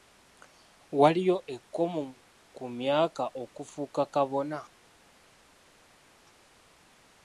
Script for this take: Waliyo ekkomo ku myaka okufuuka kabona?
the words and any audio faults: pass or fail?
pass